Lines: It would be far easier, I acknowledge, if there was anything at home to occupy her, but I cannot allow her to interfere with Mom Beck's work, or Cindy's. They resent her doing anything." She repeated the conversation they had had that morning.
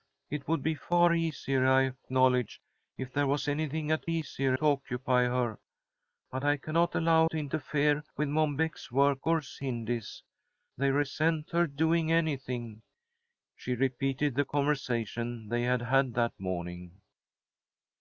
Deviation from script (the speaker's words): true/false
true